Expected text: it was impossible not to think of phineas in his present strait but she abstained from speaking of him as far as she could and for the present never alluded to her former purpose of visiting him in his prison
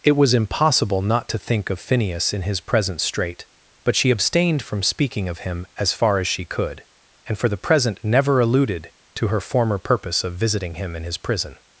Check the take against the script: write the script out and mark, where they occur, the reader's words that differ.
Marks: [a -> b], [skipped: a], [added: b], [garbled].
it was impossible not to think of phineas in his present strait but she abstained from speaking of him as far as she could and for the present never alluded to her former purpose of visiting him in his prison